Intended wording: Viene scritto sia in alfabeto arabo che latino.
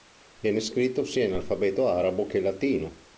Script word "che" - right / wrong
right